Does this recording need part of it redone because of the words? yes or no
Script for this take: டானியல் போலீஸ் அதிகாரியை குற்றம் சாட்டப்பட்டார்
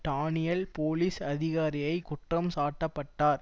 no